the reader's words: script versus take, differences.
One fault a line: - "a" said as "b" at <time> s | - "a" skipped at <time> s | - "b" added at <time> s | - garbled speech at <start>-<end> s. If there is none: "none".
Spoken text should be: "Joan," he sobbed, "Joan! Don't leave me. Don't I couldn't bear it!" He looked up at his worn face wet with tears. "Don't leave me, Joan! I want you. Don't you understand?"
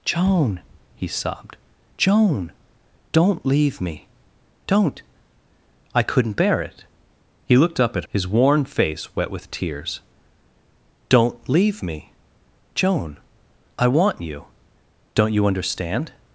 none